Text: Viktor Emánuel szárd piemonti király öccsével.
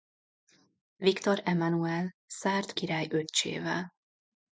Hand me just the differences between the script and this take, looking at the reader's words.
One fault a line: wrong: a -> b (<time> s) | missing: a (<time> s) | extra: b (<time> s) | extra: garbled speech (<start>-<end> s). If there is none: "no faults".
missing: piemonti (2.7 s)